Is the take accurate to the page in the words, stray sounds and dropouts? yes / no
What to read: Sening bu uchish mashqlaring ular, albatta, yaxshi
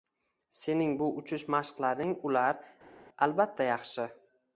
yes